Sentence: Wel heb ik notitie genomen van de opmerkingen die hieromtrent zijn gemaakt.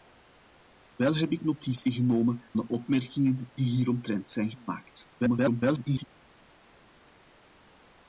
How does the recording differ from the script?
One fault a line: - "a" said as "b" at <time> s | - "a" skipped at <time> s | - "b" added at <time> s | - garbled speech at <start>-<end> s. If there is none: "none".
- "van" skipped at 2.5 s
- garbled speech at 5.2-6.0 s